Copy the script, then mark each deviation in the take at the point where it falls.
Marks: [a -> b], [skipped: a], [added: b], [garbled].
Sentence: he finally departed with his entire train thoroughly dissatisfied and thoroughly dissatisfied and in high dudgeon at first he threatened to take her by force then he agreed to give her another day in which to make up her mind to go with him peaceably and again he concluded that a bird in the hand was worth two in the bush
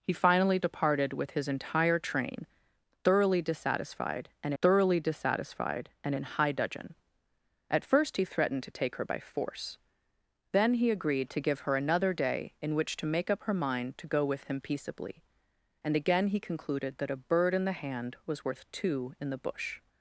he finally departed with his entire train thoroughly dissatisfied and thoroughly dissatisfied and in high dudgeon at first he threatened to take her by force then he agreed to give her another day in which to make up her mind to go with him peaceably and again he concluded that a bird in the hand was worth two in the bush